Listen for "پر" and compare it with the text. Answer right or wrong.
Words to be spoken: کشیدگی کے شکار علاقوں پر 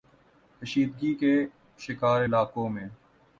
wrong